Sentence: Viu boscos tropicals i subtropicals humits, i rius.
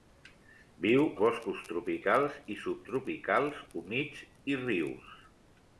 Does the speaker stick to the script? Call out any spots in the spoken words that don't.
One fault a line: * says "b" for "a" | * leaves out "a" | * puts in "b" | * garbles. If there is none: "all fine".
all fine